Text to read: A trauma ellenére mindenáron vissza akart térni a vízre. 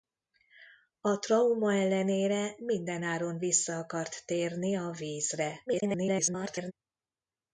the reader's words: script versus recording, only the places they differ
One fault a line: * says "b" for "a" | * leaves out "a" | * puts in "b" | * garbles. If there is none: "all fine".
* garbles